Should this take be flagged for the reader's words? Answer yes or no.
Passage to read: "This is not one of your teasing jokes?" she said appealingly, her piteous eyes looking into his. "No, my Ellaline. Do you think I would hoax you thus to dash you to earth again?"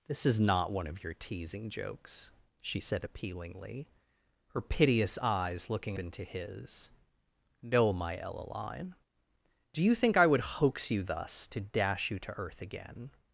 no